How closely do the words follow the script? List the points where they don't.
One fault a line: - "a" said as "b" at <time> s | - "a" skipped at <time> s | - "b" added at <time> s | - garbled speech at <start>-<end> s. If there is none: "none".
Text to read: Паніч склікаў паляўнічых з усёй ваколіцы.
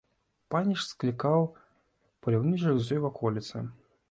none